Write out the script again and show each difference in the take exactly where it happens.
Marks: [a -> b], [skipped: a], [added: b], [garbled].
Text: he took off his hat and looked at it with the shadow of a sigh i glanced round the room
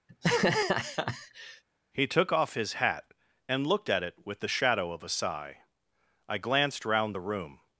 he took off his hat and looked at it with the shadow of a sigh i glanced round the room